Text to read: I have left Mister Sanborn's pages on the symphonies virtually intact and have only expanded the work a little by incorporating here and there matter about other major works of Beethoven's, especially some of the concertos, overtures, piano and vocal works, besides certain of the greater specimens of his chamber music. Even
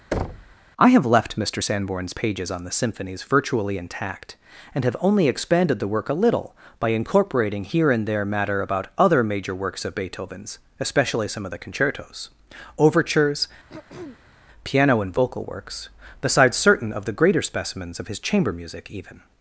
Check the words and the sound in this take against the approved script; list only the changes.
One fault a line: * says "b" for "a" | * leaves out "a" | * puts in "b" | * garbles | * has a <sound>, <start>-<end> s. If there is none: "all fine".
* has a thud, 0.1-0.6 s
* has a throat clearing, 13.7-14.5 s